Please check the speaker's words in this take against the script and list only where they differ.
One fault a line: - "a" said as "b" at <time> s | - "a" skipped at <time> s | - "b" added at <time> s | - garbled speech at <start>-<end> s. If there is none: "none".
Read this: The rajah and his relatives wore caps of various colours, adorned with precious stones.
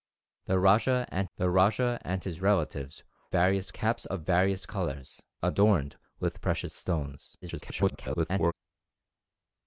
- "the rajah and" added at 1.4 s
- "wore" said as "various" at 3.3 s
- garbled speech at 7.4-8.5 s